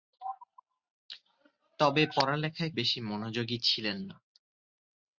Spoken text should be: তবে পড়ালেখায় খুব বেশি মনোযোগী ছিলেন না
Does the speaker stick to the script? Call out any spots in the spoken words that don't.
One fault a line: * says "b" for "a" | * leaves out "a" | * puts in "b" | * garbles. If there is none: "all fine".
* leaves out "খুব"